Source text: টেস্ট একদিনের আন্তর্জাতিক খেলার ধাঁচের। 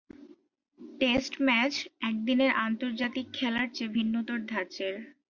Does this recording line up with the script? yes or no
no